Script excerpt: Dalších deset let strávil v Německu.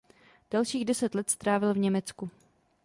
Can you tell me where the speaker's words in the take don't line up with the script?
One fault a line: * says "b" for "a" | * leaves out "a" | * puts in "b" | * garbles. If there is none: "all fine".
all fine